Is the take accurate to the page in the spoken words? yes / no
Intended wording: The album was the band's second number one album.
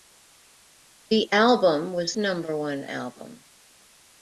no